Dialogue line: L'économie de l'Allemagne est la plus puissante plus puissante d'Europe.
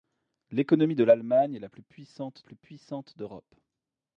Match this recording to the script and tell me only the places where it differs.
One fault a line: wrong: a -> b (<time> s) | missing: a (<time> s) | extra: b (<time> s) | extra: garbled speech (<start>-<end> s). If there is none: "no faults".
no faults